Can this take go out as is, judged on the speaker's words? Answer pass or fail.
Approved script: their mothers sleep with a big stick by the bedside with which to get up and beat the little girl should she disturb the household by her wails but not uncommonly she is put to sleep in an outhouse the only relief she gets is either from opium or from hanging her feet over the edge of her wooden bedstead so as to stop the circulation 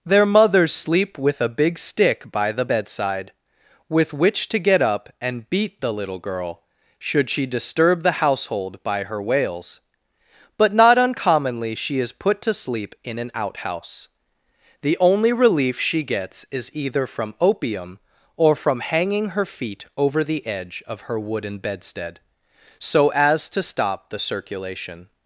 pass